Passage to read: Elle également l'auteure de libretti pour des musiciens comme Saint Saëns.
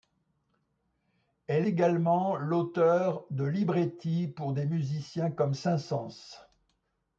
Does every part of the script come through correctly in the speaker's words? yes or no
yes